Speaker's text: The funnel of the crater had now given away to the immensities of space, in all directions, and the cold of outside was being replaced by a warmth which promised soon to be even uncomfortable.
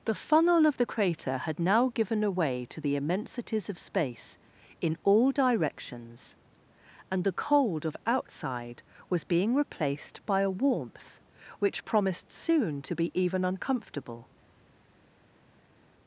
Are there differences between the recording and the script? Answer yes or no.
no